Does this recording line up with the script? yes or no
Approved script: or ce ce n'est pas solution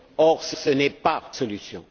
yes